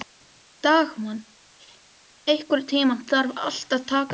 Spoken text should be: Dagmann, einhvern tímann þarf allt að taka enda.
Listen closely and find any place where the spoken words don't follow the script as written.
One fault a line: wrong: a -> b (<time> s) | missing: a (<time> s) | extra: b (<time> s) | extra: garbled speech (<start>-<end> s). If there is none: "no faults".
no faults